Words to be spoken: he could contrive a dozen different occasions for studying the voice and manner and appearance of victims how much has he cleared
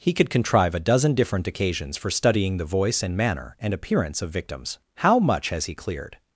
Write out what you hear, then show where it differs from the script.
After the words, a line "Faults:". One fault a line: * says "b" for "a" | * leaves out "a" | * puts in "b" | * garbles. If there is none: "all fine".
he could contrive a dozen different occasions for studying the voice and manner and appearance of victims how much has he cleared
Faults:
all fine